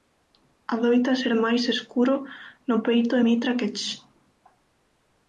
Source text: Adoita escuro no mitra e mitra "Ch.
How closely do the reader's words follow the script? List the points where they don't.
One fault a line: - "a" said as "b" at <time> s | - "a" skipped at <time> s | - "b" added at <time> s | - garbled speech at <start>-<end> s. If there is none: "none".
- "ser máis" added at 1.2 s
- "mitra" said as "peito" at 2.9 s
- "que" added at 3.6 s